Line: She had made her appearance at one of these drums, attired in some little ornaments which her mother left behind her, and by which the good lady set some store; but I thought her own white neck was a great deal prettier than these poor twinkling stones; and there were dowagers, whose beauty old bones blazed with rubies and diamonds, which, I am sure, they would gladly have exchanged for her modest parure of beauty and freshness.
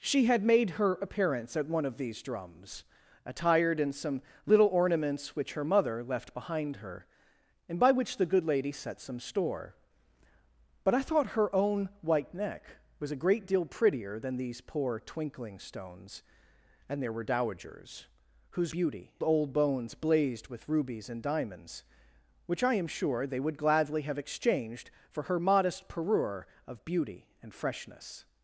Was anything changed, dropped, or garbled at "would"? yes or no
no